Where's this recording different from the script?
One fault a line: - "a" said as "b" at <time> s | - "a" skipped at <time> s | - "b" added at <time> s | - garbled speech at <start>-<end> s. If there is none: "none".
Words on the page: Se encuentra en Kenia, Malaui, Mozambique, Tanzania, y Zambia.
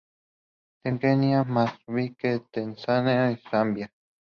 - "encuentra" skipped at 0.9 s
- "Malaui" skipped at 1.4 s